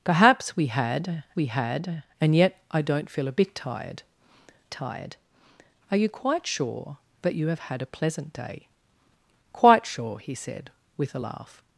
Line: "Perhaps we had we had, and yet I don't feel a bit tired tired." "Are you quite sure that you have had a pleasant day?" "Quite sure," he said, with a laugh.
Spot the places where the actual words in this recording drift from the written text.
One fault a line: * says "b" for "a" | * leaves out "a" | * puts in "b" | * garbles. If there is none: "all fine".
all fine